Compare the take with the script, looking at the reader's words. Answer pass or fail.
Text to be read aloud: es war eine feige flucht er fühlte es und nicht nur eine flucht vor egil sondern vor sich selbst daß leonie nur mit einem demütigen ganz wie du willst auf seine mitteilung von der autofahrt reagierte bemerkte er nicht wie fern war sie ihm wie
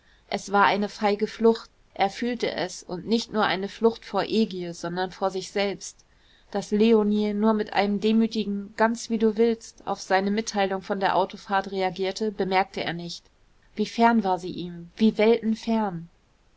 pass